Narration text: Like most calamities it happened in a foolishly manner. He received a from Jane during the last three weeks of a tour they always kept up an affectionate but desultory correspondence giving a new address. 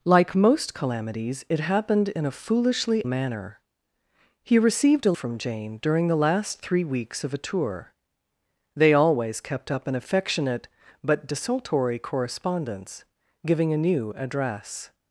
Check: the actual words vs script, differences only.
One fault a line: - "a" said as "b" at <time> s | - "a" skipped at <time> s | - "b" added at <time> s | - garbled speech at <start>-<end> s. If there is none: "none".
none